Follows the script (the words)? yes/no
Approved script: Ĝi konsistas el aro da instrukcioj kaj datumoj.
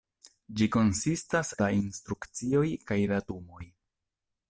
no